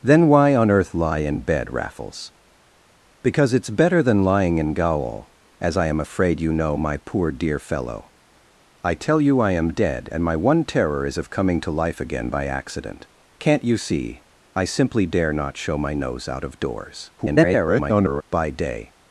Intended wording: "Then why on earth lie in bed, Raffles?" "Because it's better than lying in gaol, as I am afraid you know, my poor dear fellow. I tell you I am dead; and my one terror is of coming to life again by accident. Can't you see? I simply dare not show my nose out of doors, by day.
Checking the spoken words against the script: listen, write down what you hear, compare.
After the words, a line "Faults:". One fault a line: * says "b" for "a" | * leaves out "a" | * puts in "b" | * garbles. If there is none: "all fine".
"Then why on earth lie in bed, Raffles?" "Because it's better than lying in gaol, as I am afraid you know, my poor dear fellow. I tell you I am dead; and my one terror is of coming to life again by accident. Can't you see? I simply dare not show my nose out of doors, [garbled] by day.
Faults:
* garbles